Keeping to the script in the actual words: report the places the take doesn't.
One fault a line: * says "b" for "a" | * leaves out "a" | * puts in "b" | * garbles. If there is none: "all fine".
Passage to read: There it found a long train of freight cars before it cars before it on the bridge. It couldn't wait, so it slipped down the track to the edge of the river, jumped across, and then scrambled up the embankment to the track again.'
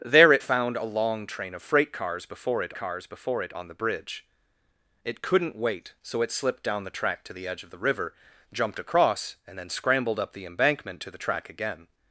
all fine